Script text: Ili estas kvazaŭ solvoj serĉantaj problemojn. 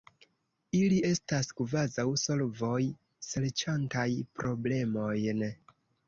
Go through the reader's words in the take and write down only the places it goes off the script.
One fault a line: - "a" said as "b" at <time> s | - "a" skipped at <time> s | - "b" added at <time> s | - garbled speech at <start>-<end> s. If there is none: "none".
none